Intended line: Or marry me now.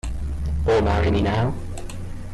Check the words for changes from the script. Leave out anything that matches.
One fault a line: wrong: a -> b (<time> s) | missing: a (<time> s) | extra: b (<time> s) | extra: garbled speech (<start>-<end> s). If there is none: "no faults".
no faults